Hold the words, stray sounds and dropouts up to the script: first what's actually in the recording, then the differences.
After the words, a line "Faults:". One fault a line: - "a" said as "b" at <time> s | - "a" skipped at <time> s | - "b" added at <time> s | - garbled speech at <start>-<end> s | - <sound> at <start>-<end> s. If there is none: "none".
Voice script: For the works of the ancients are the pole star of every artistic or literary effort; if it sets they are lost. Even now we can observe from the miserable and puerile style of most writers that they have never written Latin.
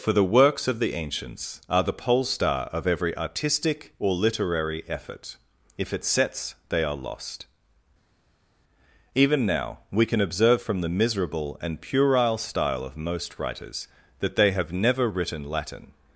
For the works of the ancients are the pole star of every artistic or literary effort; if it sets they are lost. Even now we can observe from the miserable and puerile style of most writers that they have never written Latin.
Faults:
none